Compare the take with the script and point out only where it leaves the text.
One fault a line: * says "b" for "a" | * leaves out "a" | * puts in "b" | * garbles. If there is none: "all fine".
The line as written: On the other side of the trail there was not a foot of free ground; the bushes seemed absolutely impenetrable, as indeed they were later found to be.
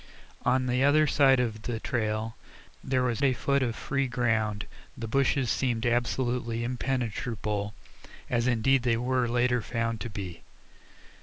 * leaves out "not"